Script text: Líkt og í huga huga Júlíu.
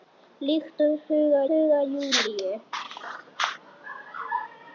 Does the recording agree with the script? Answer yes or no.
yes